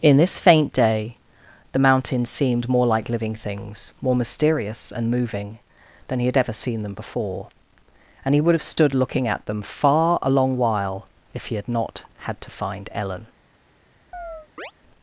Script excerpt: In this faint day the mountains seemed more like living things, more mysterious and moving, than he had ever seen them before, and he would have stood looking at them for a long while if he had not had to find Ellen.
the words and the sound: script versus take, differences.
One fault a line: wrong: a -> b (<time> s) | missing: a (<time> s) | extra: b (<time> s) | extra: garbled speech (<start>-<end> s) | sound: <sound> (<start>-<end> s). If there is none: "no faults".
wrong: for -> far (9.6 s)
sound: chirp (14.1-14.7 s)